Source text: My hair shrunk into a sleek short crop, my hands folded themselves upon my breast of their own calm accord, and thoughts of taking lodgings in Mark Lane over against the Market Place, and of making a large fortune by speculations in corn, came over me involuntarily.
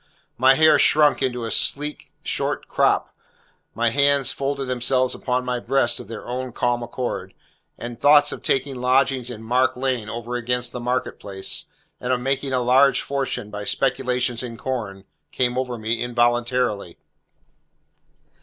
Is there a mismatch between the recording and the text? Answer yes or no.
no